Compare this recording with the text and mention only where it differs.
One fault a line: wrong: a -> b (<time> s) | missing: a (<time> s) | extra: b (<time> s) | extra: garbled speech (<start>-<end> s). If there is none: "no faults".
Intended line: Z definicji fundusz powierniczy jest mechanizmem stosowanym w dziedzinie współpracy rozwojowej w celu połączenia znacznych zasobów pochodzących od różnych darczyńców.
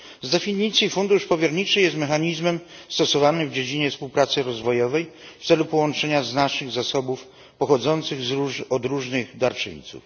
no faults